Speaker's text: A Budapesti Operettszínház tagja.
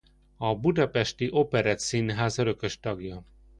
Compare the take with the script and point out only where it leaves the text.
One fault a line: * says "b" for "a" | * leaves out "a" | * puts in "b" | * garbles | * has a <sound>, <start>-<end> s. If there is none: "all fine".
* puts in "örökös"